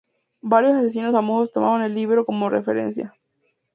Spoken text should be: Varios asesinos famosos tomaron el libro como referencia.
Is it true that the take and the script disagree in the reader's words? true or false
false